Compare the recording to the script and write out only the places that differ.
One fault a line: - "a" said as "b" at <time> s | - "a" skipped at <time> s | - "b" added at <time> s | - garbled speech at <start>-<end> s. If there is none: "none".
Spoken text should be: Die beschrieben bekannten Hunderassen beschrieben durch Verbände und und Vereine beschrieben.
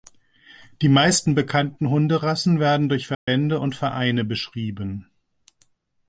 - "beschrieben" said as "meisten" at 0.9 s
- "beschrieben" said as "werden" at 2.6 s
- "und" skipped at 3.8 s